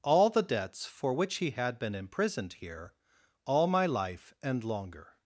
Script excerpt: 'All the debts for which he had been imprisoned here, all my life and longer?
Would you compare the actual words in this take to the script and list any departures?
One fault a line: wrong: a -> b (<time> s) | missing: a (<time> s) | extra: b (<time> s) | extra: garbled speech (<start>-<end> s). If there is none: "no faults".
no faults